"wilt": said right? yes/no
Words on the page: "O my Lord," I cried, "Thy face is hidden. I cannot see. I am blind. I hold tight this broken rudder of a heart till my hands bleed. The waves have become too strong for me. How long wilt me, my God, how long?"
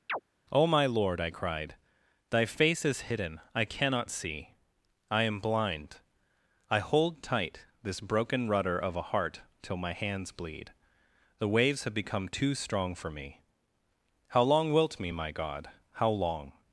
yes